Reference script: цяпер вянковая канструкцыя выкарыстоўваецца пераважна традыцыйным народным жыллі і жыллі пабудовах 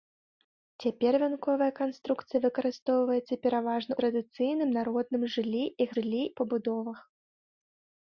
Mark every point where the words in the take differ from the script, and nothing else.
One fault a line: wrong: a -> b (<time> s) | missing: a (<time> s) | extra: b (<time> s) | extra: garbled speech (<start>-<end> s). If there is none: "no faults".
no faults